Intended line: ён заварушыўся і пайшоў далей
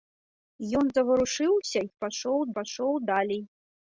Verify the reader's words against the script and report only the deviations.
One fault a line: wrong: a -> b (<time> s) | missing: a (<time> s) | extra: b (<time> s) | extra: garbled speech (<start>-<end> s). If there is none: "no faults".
extra: пайшоў (2.6 s)